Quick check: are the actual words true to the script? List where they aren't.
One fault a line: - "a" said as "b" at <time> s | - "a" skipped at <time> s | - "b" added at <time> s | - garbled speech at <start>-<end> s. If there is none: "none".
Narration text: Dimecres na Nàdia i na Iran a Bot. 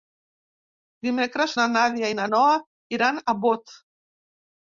- "Noa" added at 2.3 s